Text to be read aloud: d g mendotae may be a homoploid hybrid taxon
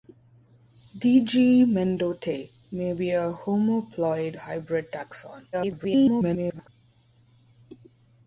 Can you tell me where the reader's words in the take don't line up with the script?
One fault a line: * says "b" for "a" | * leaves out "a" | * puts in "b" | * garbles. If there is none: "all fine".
* garbles